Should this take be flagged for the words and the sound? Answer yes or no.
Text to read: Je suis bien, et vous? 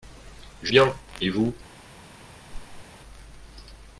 yes